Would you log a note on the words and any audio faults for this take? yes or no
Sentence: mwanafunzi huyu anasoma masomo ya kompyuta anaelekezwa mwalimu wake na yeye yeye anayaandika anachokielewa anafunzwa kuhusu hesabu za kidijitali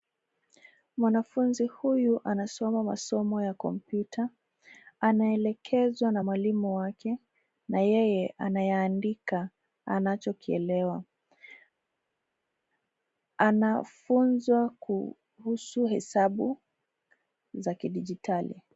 yes